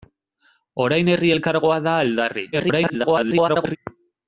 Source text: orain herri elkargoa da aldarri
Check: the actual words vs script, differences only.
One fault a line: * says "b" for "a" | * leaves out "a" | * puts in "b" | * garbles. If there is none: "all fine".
* garbles